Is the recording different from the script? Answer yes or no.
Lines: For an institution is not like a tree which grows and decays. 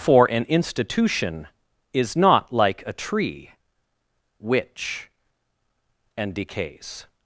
yes